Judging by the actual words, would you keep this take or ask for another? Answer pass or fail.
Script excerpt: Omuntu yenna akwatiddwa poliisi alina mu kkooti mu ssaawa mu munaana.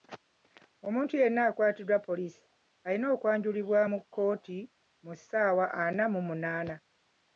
fail